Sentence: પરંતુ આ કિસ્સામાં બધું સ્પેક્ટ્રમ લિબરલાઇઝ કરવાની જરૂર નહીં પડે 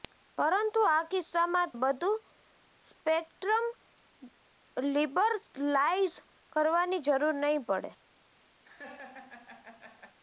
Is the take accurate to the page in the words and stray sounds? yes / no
no